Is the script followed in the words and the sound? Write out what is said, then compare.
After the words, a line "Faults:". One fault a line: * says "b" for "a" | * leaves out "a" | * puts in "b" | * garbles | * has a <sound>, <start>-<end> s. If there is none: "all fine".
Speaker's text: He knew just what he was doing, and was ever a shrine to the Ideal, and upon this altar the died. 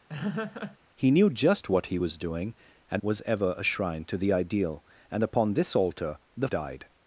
He knew just what he was doing, and was ever a shrine to the Ideal, and upon this altar the died.
Faults:
* has a laugh, 0.1-0.8 s